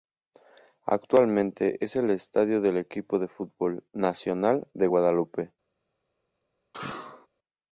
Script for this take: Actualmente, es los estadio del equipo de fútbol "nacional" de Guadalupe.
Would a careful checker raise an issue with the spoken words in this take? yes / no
yes